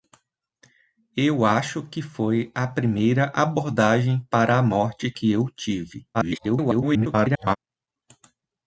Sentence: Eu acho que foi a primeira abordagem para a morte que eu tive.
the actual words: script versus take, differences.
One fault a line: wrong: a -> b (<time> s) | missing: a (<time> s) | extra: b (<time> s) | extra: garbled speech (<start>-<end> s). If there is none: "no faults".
extra: garbled speech (6.1-7.6 s)